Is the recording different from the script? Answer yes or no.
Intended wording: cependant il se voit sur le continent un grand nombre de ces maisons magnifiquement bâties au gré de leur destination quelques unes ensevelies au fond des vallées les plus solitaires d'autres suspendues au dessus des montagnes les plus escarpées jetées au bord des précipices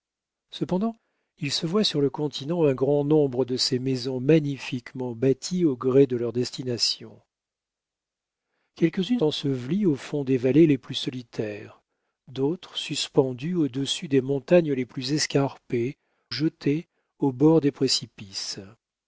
no